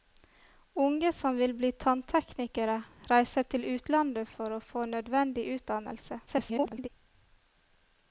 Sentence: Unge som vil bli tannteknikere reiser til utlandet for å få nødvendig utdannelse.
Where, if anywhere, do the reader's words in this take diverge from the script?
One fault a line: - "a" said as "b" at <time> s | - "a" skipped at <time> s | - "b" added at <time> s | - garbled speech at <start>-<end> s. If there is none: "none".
- garbled speech at 6.3-6.9 s